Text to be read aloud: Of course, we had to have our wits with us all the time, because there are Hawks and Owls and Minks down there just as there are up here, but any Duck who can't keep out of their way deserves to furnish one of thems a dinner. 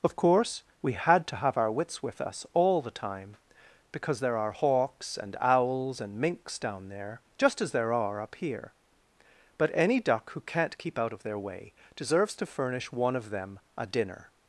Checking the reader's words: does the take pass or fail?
fail